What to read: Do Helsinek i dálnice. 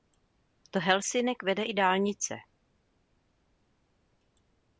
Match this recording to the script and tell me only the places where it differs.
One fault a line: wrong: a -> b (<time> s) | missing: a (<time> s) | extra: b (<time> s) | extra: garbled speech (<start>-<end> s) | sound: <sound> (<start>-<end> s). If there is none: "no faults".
extra: vede (1.4 s)